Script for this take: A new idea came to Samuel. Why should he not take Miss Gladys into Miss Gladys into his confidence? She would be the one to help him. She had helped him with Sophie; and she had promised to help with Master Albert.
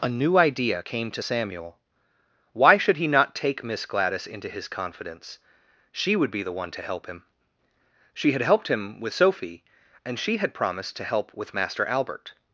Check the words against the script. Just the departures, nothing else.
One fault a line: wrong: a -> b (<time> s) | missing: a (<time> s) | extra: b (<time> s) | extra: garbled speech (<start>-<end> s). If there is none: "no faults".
missing: Miss Gladys into (4.5 s)